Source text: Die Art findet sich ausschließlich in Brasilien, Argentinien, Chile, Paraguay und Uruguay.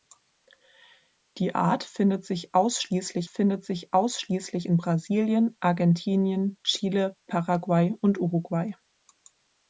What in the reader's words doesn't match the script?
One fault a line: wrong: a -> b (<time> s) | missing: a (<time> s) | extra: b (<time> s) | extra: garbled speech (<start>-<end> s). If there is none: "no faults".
extra: findet sich ausschließlich (3.2 s)